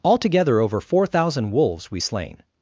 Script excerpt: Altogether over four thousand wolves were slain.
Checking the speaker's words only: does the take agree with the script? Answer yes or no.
no